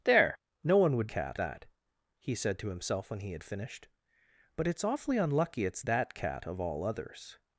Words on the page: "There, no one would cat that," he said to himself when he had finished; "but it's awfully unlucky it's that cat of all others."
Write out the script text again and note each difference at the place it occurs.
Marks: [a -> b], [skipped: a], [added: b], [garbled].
"There, no one would cat that," he said to himself when he had finished; "but it's awfully unlucky it's that cat of all others."